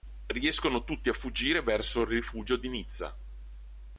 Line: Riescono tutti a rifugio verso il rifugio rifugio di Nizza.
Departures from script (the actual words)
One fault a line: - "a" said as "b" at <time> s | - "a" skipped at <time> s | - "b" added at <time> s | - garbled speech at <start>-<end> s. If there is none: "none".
- "rifugio" said as "fuggire" at 1.1 s
- "rifugio" skipped at 2.6 s